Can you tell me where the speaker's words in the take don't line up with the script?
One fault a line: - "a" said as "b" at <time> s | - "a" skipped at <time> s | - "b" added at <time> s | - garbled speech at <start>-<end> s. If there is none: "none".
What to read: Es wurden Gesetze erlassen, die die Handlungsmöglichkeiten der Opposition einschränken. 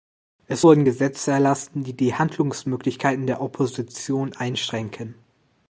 none